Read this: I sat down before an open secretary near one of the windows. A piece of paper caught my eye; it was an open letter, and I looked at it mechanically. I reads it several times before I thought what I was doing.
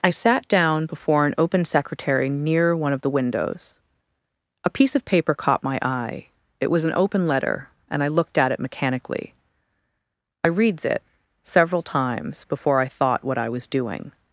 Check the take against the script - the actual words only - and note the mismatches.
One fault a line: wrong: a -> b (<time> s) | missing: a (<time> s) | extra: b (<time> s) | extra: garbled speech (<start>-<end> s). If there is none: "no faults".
no faults